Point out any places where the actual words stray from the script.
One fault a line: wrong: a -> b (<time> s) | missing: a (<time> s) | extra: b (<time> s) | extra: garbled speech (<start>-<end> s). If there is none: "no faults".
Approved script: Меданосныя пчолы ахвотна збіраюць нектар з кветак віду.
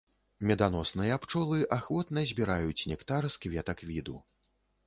no faults